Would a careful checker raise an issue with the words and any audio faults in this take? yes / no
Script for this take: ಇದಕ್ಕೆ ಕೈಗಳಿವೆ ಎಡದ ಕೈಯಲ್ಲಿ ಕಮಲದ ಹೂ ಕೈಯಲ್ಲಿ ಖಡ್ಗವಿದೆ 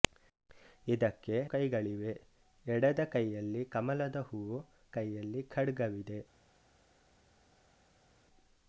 no